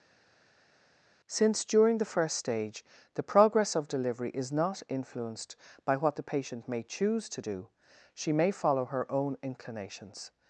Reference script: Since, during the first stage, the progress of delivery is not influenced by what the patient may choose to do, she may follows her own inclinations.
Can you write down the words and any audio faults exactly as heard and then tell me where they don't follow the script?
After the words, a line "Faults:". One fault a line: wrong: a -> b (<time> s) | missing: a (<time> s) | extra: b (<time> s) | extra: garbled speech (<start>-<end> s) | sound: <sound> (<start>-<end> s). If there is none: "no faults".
Since, during the first stage, the progress of delivery is not influenced by what the patient may choose to do, she may follow her own inclinations.
Faults:
wrong: follows -> follow (8.5 s)